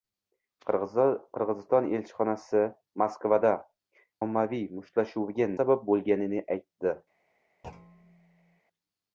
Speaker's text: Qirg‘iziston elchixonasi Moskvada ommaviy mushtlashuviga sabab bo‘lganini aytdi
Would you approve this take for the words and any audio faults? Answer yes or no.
no